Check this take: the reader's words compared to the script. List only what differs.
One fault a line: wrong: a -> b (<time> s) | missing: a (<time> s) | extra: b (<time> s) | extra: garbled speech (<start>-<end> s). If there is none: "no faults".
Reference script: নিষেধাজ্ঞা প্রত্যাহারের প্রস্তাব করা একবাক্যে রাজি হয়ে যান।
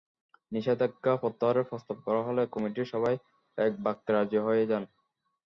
extra: হলে কমিটির সবাই (2.3 s)